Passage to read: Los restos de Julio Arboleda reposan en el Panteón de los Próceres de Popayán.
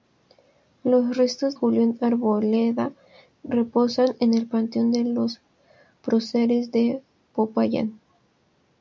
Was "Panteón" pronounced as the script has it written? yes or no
yes